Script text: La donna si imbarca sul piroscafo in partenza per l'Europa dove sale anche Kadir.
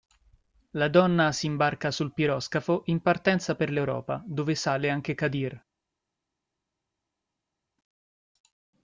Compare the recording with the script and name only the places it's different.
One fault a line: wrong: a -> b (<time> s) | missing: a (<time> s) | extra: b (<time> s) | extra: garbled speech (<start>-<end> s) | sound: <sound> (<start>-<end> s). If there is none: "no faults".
no faults